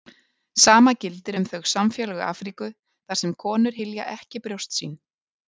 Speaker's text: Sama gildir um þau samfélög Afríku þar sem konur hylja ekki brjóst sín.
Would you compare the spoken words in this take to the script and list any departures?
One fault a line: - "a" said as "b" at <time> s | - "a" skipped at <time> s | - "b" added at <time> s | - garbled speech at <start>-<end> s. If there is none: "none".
none